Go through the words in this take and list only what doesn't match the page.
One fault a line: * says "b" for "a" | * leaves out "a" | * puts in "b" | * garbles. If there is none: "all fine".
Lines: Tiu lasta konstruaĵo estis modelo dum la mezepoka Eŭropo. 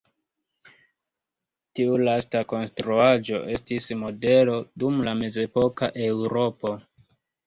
all fine